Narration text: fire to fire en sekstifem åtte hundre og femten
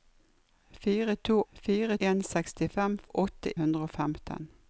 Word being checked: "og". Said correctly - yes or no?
yes